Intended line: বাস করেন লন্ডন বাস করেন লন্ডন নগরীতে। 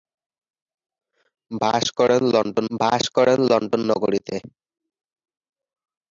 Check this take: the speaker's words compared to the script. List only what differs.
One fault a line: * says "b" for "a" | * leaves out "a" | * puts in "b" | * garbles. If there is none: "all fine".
all fine